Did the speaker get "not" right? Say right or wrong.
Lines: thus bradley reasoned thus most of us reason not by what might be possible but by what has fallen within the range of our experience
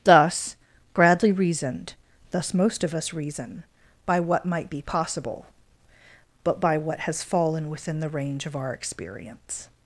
wrong